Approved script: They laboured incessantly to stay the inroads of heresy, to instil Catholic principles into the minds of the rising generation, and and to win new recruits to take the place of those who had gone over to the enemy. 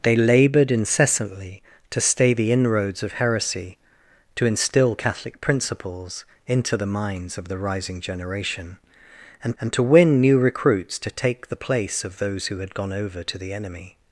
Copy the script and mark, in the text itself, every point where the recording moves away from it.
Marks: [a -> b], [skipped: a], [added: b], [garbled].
They laboured incessantly to stay the inroads of heresy, to instil Catholic principles into the minds of the rising generation, and and to win new recruits to take the place of those who had gone over to the enemy.